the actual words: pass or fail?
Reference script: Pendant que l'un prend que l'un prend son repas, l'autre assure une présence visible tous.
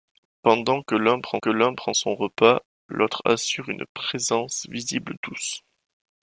pass